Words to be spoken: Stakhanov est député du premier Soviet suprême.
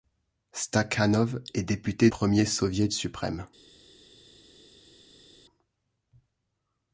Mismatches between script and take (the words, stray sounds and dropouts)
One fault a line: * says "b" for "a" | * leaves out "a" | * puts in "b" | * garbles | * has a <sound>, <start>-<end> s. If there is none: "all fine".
* leaves out "du"